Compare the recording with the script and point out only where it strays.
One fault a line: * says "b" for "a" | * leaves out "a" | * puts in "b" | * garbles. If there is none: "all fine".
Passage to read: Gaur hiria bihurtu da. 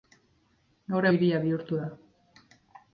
all fine